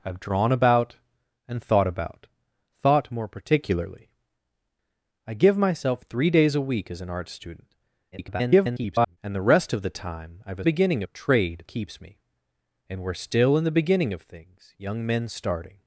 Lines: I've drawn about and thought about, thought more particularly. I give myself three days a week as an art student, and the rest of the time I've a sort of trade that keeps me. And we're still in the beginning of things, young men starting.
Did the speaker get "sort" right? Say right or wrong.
wrong